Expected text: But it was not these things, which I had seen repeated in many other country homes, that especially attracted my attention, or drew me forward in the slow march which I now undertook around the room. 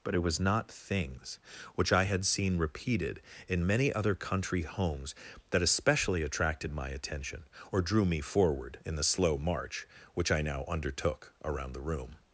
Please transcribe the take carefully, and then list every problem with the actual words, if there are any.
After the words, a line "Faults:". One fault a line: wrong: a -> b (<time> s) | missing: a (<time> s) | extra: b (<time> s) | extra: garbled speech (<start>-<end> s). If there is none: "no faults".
But it was not things, which I had seen repeated in many other country homes, that especially attracted my attention, or drew me forward in the slow march which I now undertook around the room.
Faults:
missing: these (0.7 s)